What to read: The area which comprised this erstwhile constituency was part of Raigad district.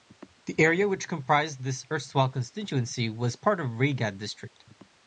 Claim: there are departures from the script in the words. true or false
false